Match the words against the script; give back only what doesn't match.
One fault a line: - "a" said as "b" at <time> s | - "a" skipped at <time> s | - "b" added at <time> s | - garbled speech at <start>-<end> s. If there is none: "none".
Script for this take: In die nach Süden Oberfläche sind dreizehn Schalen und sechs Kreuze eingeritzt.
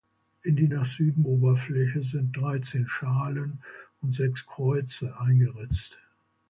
none